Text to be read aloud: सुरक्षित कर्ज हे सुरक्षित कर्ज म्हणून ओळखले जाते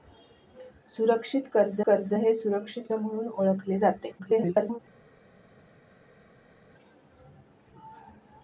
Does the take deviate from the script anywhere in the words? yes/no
yes